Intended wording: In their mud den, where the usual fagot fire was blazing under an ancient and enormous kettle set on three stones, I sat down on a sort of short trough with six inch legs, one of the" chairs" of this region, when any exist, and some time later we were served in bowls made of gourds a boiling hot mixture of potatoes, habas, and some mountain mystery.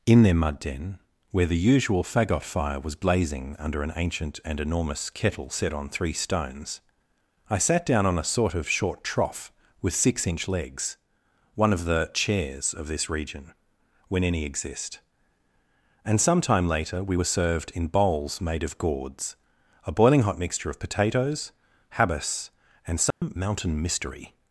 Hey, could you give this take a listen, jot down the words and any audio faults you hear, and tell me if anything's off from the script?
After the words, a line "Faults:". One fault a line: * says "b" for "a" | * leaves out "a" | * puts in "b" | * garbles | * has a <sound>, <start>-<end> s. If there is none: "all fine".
In their mud den, where the usual fagot fire was blazing under an ancient and enormous kettle set on three stones, I sat down on a sort of short trough with six inch legs, one of the" chairs" of this region, when any exist, and some time later we were served in bowls made of gourds a boiling hot mixture of potatoes, habas, and some mountain mystery.
Faults:
* has a dropout, 23.1-23.2 s